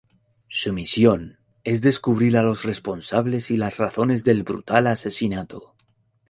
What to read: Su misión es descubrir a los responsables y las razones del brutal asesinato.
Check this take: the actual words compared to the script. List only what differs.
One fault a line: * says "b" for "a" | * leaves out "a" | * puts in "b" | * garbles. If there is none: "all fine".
all fine